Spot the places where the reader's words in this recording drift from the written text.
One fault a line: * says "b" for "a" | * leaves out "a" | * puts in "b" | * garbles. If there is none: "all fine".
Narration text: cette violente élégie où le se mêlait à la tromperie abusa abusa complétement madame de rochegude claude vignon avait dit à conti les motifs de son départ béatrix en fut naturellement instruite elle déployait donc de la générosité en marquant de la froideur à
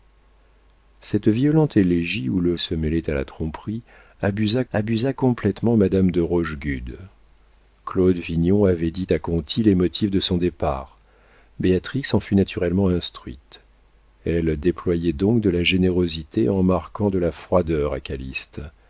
all fine